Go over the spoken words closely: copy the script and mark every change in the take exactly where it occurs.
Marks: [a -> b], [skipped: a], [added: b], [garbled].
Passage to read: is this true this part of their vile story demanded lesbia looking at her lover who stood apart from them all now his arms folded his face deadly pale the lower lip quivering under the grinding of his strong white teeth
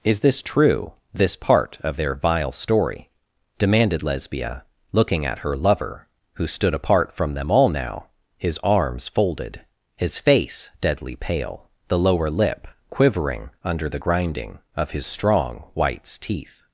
is this true this part of their vile story demanded lesbia looking at her lover who stood apart from them all now his arms folded his face deadly pale the lower lip quivering under the grinding of his strong [white -> whites] teeth